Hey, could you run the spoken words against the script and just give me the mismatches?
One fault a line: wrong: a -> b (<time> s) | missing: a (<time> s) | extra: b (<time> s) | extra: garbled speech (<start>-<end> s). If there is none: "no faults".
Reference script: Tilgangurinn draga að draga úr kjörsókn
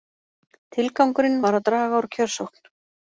wrong: draga -> var (1.5 s)